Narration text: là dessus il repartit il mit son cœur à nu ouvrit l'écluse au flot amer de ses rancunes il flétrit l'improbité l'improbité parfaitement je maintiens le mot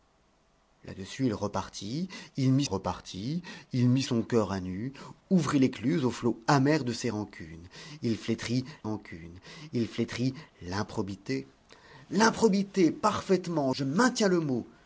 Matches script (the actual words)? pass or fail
fail